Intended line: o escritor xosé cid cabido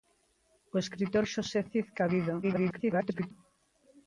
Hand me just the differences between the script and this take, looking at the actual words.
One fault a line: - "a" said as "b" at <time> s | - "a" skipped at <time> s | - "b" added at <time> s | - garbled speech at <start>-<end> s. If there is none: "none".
- garbled speech at 2.4-3.3 s